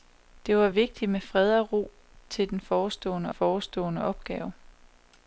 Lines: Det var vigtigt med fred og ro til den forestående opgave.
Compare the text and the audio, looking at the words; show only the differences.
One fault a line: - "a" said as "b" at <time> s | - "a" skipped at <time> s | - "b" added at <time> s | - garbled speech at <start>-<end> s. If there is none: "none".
- "forestående" added at 3.3 s